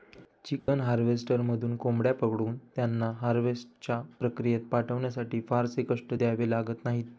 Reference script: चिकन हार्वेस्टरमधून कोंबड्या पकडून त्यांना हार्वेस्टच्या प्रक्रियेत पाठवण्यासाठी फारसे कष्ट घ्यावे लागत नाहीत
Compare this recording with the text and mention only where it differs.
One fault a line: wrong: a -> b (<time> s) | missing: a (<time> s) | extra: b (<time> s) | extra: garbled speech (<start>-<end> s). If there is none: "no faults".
no faults